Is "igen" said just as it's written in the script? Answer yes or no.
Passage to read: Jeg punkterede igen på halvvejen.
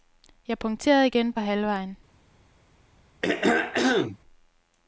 yes